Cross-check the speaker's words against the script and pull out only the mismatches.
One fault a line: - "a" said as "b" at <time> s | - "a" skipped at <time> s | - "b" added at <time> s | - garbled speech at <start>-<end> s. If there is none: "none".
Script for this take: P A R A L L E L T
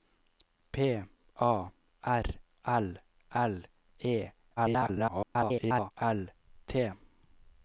- "A" skipped at 2.2 s
- garbled speech at 4.6-5.9 s